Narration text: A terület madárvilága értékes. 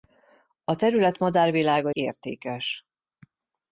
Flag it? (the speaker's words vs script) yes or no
no